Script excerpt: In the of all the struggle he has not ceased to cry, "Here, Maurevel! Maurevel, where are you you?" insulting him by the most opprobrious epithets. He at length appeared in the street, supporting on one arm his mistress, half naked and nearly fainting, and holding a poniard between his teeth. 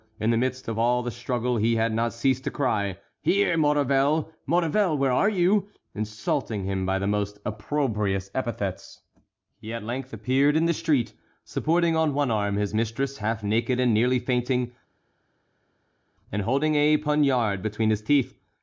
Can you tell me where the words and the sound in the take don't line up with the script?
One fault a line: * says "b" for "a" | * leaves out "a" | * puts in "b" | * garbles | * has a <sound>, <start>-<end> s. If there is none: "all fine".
* puts in "midst"
* says "had" for "has"
* leaves out "you"